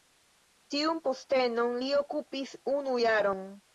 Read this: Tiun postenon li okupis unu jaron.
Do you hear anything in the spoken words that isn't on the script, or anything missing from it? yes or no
no